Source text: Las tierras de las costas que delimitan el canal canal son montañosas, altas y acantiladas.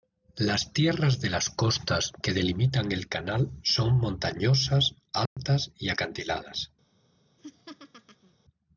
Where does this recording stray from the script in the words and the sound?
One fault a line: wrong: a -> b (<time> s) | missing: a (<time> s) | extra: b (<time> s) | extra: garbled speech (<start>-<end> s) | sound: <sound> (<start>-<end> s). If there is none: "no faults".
missing: canal (3.5 s)
sound: dropout (5.3-5.4 s)
sound: laugh (7.4-8.3 s)